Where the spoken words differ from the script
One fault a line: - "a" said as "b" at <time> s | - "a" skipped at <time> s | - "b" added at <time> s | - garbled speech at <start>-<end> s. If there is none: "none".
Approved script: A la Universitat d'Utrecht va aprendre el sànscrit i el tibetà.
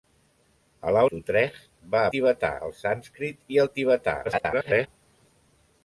- "Universitat" skipped at 1.0 s
- "aprendre" said as "tibetà" at 2.1 s
- garbled speech at 4.2-4.9 s